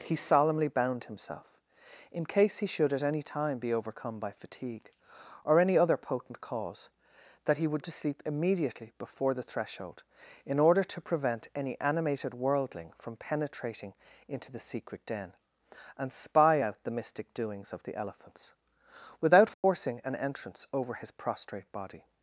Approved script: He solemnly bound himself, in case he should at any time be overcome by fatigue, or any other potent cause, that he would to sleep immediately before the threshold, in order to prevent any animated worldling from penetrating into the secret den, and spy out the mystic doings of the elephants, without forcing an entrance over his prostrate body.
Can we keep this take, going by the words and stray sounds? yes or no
no